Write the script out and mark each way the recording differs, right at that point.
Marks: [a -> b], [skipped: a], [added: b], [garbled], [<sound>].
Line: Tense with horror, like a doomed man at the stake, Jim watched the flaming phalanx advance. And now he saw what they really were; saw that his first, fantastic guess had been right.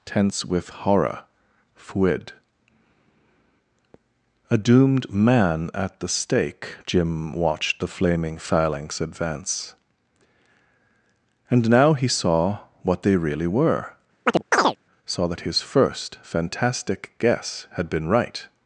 Tense with horror, [like -> fuid] a doomed man at the stake, Jim watched the flaming phalanx advance. And now he saw what they really were; [chirp] saw that his first, fantastic guess had been right.